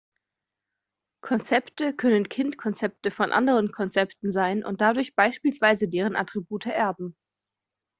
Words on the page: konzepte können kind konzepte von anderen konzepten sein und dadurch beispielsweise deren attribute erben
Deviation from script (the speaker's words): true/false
false